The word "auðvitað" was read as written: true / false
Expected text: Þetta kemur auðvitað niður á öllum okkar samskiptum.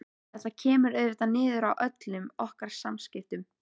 true